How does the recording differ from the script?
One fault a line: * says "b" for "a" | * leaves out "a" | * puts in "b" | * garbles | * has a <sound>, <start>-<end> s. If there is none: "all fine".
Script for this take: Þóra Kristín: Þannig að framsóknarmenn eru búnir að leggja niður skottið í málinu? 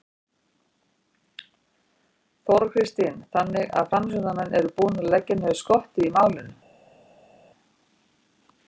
all fine